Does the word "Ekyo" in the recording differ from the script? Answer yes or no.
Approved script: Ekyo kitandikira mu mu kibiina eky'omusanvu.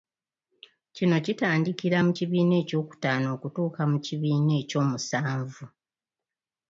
yes